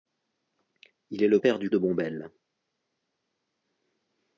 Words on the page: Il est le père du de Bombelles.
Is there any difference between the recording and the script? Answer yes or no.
no